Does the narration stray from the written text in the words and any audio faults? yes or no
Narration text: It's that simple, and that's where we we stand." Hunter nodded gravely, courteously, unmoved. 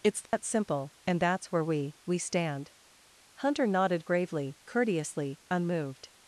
yes